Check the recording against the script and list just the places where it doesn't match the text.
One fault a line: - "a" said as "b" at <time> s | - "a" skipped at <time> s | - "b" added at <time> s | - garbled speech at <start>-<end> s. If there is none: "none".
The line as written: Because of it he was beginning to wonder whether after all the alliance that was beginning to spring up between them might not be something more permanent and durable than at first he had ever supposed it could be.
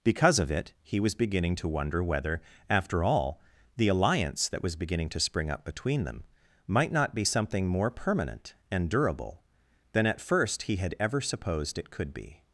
none